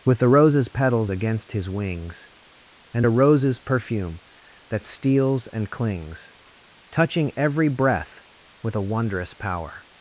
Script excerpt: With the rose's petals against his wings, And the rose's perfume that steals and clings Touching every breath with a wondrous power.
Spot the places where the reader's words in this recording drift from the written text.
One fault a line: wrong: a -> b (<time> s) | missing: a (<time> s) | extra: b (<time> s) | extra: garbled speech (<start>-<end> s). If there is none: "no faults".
wrong: the -> a (3.0 s)